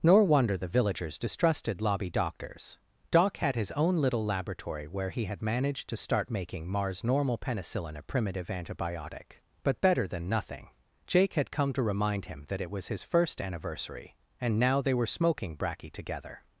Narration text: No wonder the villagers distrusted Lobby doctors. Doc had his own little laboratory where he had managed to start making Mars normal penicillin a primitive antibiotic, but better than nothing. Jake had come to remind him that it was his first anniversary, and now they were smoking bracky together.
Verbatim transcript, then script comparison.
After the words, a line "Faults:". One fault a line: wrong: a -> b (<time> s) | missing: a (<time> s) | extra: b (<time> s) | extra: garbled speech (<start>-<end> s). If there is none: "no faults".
Nor wonder the villagers distrusted Lobby doctors. Doc had his own little laboratory where he had managed to start making Mars normal penicillin a primitive antibiotic, but better than nothing. Jake had come to remind him that it was his first anniversary, and now they were smoking bracky together.
Faults:
wrong: No -> Nor (0.0 s)